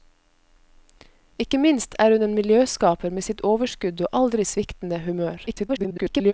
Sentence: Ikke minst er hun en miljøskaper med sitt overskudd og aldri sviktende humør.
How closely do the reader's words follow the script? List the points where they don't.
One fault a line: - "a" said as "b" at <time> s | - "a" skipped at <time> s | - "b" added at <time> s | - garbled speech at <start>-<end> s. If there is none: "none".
- garbled speech at 5.5-6.3 s